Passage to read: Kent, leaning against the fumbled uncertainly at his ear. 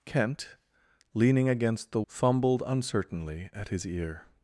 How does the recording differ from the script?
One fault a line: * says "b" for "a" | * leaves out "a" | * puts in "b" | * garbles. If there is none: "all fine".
all fine